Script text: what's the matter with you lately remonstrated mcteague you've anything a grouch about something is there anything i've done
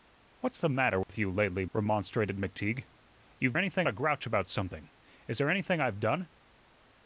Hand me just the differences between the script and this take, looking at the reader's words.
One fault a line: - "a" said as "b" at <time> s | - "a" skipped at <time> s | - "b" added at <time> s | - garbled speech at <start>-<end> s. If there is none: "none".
none